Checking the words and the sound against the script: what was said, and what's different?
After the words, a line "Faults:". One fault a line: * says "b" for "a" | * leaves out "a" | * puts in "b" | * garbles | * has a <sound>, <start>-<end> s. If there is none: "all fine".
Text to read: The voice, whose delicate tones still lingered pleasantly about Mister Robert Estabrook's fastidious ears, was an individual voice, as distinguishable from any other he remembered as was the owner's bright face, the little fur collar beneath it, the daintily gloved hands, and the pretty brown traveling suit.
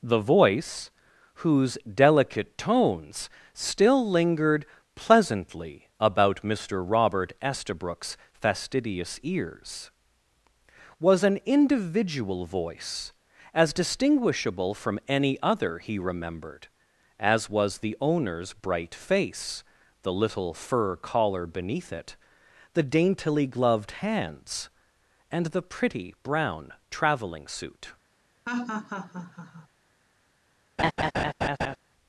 The voice, whose delicate tones still lingered pleasantly about Mister Robert Estabrook's fastidious ears, was an individual voice, as distinguishable from any other he remembered as was the owner's bright face, the little fur collar beneath it, the daintily gloved hands, and the pretty brown traveling suit.
Faults:
* has a laugh, 28.5-29.7 s
* has a laugh, 30.8-31.8 s